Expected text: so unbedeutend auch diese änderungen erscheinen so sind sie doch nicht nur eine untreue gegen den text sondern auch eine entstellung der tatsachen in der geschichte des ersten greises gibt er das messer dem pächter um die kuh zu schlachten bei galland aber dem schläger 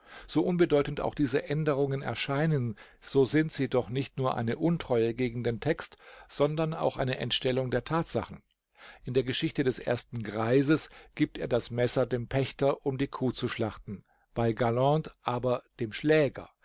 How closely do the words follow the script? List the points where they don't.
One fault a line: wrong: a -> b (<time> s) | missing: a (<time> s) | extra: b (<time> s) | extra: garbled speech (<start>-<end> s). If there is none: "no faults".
no faults